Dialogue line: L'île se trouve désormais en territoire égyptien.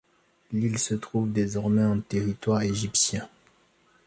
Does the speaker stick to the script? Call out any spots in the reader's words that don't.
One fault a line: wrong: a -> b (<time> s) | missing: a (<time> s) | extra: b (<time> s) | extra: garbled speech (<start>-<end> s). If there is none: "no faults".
no faults